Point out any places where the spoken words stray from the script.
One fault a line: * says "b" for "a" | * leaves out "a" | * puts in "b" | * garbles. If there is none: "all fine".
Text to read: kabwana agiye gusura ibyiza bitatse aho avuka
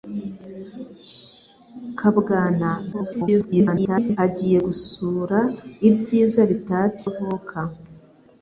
* garbles
* leaves out "aho"